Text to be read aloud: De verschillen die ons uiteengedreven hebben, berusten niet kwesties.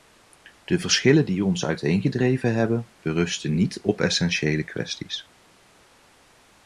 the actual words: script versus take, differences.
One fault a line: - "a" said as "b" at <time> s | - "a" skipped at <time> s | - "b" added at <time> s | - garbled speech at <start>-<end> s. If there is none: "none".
- "op essentiële" added at 3.8 s